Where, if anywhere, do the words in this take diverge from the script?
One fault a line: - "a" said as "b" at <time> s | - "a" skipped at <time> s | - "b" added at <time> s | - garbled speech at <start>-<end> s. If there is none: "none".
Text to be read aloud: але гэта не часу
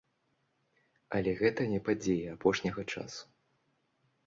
- "падзеі апошняга" added at 1.9 s